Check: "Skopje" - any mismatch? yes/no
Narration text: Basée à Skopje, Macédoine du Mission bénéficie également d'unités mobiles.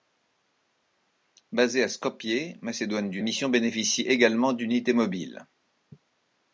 no